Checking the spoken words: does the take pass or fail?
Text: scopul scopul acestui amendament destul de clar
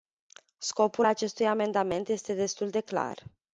fail